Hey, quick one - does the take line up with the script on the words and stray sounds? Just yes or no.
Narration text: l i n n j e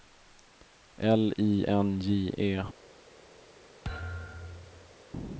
no